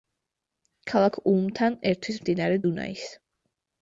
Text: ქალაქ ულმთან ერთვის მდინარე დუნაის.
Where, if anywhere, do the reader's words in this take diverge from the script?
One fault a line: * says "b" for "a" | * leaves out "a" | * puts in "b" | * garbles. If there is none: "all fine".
all fine